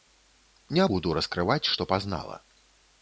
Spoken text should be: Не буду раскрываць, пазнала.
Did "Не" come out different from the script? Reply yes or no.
no